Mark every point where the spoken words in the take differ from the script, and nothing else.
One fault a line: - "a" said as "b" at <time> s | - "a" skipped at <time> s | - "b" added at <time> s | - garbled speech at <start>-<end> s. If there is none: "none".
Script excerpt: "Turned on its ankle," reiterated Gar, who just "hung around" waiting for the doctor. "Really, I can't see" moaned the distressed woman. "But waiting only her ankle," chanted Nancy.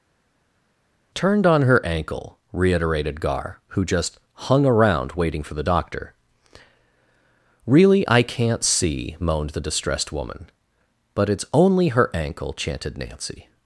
- "its" said as "her" at 1.6 s
- "waiting" said as "it's" at 11.3 s